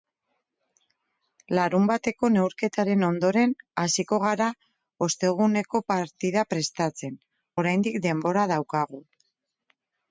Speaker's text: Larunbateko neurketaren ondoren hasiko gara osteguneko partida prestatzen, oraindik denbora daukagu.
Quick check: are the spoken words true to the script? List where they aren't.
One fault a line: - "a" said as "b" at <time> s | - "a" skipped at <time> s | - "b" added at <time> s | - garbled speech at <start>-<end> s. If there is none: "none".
none